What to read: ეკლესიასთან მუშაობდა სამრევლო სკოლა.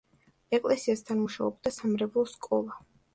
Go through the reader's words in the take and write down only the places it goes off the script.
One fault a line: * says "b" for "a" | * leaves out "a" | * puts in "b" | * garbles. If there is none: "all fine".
all fine